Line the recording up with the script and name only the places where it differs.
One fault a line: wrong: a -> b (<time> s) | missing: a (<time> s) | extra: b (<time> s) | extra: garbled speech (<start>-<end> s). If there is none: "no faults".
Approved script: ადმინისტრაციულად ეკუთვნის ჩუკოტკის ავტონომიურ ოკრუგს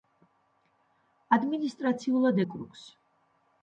missing: ეკუთვნის ჩუკოტკის ავტონომიურ (2.4 s)